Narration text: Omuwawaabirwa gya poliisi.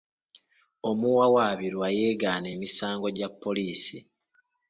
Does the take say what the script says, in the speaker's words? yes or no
no